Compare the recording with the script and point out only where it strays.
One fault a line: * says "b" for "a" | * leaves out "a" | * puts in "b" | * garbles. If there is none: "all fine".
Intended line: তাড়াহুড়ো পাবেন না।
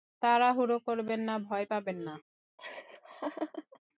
* puts in "করবেন না ভয়"